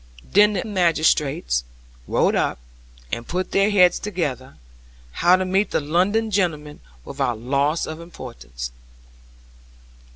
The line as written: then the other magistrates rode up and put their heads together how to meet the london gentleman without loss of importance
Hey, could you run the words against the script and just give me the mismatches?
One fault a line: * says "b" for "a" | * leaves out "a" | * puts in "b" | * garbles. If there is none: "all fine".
* leaves out "other"